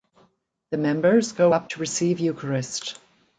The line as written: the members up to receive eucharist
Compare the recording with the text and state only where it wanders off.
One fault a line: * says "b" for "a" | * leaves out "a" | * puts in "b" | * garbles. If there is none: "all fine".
* puts in "go"